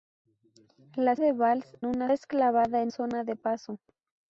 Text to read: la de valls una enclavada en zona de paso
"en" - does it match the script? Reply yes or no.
yes